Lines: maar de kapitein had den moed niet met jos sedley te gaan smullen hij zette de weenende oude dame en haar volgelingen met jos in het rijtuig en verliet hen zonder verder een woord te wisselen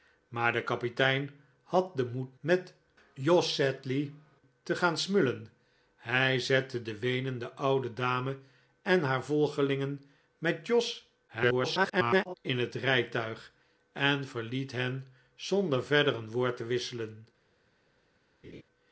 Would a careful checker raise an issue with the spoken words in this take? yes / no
yes